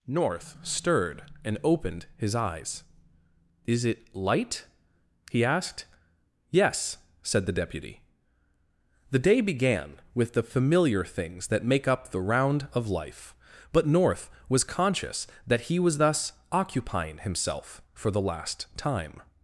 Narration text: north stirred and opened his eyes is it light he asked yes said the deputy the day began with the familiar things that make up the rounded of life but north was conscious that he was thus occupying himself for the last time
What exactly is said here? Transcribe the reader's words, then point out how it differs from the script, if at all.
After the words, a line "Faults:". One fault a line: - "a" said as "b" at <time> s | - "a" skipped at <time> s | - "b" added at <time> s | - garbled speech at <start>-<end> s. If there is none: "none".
north stirred and opened his eyes is it light he asked yes said the deputy the day began with the familiar things that make up the round of life but north was conscious that he was thus occupying himself for the last time
Faults:
- "rounded" said as "round" at 12.2 s